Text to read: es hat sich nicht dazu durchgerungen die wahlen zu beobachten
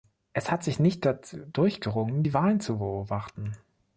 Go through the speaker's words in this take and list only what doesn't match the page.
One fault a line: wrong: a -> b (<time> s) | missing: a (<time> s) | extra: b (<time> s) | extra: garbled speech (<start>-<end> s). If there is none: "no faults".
no faults